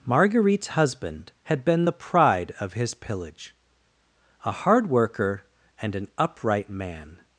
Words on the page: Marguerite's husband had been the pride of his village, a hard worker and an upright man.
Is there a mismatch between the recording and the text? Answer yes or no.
yes